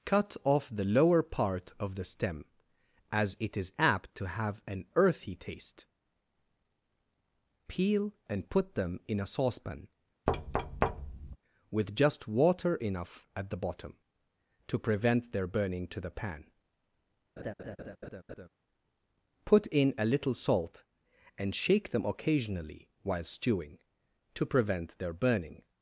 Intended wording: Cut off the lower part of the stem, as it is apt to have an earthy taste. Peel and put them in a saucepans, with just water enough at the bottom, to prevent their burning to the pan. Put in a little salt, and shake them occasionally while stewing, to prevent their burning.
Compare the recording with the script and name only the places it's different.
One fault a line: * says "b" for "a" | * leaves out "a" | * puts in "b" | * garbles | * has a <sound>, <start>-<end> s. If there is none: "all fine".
* says "saucepan" for "saucepans"
* has a thud, 10.3-11.4 s
* has a laugh, 17.4-18.5 s